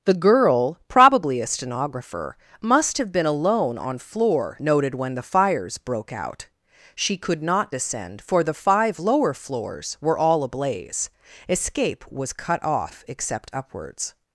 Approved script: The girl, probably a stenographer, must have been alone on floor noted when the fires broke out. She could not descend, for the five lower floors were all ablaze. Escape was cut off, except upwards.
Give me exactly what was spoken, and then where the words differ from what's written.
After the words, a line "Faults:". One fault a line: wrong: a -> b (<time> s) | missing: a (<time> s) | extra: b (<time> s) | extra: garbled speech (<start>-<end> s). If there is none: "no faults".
The girl, probably a stenographer, must have been alone on floor noted when the fires broke out. She could not descend, for the five lower floors were all ablaze. Escape was cut off, except upwards.
Faults:
no faults